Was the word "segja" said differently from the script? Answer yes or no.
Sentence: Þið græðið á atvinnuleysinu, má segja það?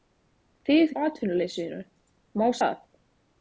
yes